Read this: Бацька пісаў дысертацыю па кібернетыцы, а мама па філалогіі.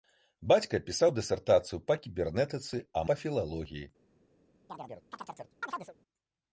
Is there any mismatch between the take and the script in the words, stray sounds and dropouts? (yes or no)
yes